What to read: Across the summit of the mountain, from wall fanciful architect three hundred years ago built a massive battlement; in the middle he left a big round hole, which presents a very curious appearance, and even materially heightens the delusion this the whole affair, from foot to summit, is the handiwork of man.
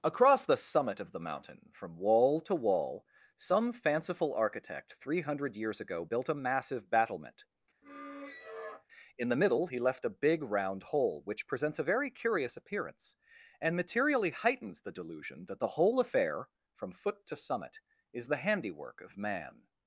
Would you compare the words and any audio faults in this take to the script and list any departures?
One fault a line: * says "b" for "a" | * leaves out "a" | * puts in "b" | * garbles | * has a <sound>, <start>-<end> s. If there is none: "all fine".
* puts in "to wall some"
* has a squeak, 7.8-8.9 s
* leaves out "even"
* says "that" for "this"